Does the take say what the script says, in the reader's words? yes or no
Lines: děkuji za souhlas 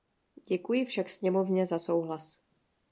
no